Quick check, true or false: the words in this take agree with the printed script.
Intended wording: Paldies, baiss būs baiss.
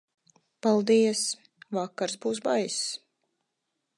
false